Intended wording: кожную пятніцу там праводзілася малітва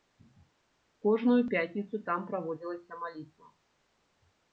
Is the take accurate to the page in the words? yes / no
yes